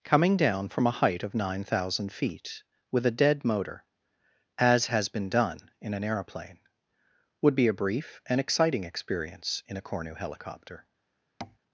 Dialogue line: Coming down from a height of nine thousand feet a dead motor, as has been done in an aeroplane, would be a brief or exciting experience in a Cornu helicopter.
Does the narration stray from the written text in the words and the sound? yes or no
yes